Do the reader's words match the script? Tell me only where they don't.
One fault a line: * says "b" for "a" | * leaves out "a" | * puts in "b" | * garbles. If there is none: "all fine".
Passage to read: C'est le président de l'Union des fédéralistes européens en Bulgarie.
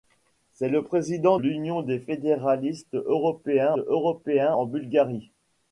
* leaves out "de"
* puts in "européens"